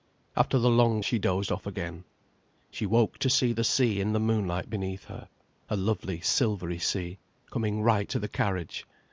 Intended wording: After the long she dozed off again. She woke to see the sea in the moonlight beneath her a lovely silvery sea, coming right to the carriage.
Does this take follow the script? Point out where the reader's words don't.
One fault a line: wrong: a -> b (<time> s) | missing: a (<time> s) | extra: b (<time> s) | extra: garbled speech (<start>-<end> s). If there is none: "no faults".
no faults